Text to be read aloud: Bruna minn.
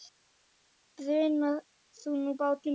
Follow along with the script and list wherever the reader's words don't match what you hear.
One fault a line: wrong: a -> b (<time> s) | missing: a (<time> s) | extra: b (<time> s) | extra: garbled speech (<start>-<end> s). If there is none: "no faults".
extra: þú nú bátur (2.0 s)